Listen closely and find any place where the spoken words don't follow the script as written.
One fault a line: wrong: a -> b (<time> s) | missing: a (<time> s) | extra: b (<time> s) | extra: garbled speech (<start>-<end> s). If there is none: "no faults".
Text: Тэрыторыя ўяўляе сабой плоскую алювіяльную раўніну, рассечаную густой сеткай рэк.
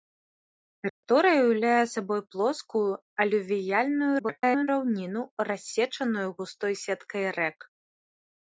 extra: garbled speech (4.2-4.7 s)